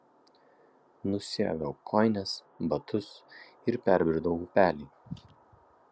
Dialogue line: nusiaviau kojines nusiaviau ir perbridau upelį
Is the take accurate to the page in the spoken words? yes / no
no